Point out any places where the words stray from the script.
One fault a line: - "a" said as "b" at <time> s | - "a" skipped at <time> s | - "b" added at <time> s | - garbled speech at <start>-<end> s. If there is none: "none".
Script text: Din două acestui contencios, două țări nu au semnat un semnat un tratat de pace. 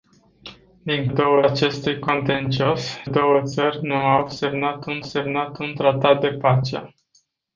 none